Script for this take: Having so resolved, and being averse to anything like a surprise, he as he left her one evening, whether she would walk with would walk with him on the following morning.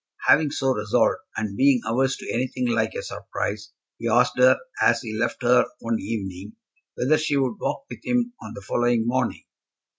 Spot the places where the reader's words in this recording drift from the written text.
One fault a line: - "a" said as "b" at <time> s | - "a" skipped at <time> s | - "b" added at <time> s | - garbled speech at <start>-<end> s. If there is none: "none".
- "asked her" added at 4.1 s
- "would walk with" skipped at 8.0 s